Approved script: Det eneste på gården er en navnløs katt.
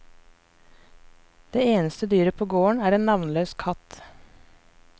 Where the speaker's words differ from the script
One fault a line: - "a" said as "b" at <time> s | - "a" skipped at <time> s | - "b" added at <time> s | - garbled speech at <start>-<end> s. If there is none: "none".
- "dyret" added at 2.1 s